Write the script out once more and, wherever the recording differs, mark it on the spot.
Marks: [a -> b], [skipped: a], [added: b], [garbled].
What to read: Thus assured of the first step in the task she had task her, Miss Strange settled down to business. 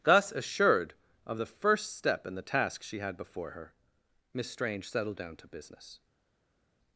Thus assured of the first step in the task she had [task -> before] her, Miss Strange settled down to business.